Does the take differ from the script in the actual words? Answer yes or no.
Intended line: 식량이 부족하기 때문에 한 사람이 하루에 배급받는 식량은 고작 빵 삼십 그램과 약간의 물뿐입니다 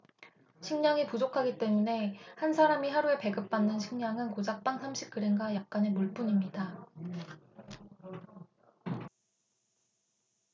no